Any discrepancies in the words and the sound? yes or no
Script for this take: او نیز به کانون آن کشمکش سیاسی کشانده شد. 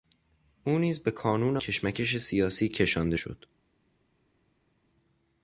yes